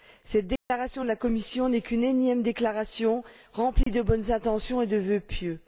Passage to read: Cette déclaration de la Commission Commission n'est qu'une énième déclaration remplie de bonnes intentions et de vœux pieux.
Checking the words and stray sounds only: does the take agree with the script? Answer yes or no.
no